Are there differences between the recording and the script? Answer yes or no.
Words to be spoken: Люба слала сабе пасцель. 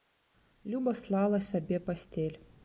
no